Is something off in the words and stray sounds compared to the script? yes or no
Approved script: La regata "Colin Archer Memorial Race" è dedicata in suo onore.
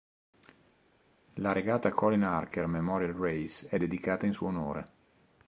no